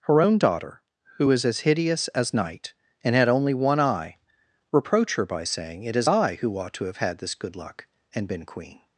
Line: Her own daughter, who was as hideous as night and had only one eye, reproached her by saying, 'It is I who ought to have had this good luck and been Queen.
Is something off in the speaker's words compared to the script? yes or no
yes